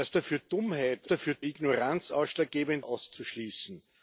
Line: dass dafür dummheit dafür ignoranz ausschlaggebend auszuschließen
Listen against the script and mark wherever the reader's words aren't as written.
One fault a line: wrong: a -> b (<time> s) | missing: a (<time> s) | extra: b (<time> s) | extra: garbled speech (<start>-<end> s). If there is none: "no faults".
no faults